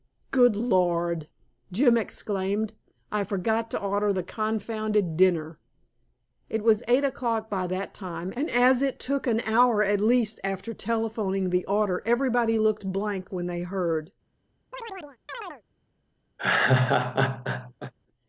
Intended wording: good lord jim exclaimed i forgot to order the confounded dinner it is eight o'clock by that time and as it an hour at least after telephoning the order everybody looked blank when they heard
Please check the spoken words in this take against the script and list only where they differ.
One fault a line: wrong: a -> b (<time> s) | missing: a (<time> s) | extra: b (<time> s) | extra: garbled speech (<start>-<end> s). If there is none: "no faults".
wrong: is -> was (6.6 s)
extra: took (9.0 s)